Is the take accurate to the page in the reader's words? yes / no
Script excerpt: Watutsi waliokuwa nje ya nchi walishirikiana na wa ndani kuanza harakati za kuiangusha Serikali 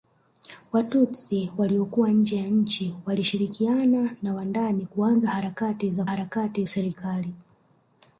no